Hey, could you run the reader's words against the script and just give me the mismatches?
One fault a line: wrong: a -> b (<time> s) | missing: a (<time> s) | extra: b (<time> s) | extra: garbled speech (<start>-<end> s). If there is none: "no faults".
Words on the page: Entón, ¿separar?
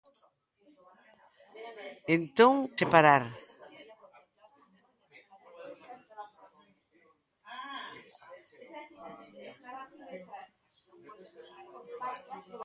no faults